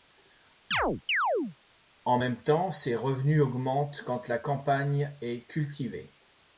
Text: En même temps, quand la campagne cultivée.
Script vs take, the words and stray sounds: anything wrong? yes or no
yes